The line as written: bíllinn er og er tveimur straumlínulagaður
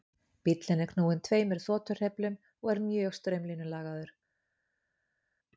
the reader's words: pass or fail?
fail